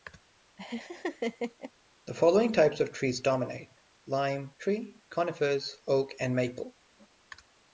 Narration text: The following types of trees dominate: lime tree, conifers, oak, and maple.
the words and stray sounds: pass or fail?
fail